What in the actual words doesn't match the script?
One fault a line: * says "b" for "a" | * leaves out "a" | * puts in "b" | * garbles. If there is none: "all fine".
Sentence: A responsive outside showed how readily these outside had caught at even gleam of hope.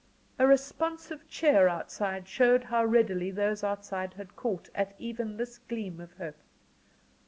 * puts in "cheer"
* says "those" for "these"
* puts in "this"